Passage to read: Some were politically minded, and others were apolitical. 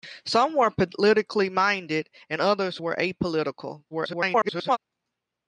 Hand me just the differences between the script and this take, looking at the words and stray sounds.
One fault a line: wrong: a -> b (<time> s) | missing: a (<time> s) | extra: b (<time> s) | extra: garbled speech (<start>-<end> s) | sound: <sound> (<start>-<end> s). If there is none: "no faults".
extra: garbled speech (3.9-4.8 s)